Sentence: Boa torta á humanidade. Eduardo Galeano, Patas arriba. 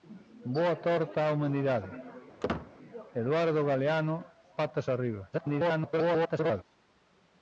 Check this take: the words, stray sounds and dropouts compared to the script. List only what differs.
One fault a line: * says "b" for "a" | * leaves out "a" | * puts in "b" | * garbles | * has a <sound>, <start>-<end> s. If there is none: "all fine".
* has a squeak, 2.4-2.7 s
* garbles